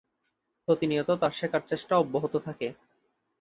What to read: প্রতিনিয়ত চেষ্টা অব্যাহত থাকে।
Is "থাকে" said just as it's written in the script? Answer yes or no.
yes